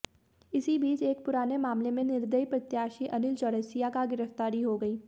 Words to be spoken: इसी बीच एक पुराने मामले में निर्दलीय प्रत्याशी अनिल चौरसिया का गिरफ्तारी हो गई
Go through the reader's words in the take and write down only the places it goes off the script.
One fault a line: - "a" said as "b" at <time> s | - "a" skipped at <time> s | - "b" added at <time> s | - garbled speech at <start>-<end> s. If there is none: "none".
none